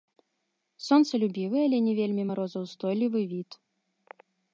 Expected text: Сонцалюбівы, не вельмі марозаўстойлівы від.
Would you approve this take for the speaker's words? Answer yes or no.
no